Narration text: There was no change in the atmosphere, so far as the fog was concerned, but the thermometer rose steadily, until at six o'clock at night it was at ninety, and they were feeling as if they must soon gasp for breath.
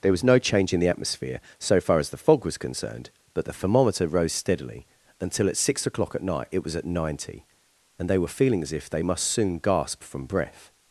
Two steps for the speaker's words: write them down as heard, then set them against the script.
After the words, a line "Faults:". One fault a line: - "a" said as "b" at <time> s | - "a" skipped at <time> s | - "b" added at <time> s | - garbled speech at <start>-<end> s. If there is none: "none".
There was no change in the atmosphere, so far as the fog was concerned, but the thermometer rose steadily, until at six o'clock at night it was at ninety, and they were feeling as if they must soon gasp from breath.
Faults:
- "for" said as "from" at 10.0 s